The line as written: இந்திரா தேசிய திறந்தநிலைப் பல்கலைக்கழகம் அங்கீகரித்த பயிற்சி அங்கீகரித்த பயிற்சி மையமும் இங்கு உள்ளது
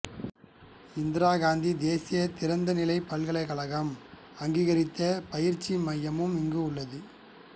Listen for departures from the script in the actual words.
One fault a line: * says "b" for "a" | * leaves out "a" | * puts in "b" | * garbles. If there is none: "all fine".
* puts in "காந்தி"
* leaves out "அங்கீகரித்த பயிற்சி"